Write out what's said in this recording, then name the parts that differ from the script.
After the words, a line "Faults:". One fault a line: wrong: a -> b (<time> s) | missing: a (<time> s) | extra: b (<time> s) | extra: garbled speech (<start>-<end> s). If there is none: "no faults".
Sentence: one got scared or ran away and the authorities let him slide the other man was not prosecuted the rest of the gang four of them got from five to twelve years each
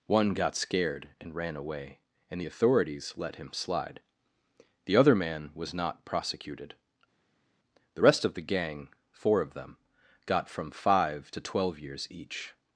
one got scared and ran away and the authorities let him slide the other man was not prosecuted the rest of the gang four of them got from five to twelve years each
Faults:
wrong: or -> and (1.2 s)